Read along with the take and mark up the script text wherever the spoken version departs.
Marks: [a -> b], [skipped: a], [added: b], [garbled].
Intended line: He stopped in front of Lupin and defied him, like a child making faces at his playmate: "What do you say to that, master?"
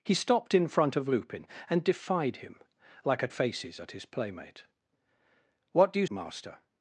He stopped in front of Lupin and defied him, like a [skipped: child making] faces at his playmate: "What do you [skipped: say to that,] master?"